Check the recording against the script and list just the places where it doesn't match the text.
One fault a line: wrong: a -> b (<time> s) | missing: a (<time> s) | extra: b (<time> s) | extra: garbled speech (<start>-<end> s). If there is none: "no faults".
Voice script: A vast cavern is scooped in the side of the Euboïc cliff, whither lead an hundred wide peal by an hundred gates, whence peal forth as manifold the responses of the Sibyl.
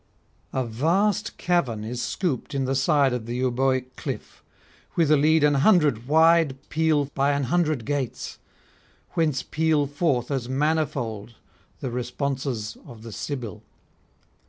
no faults